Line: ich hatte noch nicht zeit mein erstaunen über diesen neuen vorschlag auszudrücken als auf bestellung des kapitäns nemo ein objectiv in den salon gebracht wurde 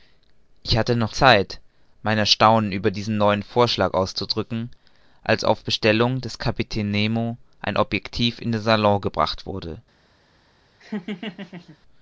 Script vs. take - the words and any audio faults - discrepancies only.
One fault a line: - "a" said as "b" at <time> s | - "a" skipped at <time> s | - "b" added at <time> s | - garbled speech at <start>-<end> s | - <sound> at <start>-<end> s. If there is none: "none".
- "nicht" skipped at 1.1 s
- laugh at 10.8-11.8 s